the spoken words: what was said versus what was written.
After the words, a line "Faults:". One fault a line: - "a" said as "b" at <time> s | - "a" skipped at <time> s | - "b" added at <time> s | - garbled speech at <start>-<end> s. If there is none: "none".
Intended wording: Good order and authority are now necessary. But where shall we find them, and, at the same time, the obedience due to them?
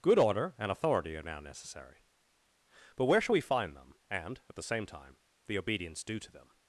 Good order and authority are now necessary. But where shall we find them, and, at the same time, the obedience due to them?
Faults:
none